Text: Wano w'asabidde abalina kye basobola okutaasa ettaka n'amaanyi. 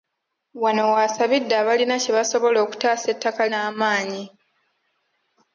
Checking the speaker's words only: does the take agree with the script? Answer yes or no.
yes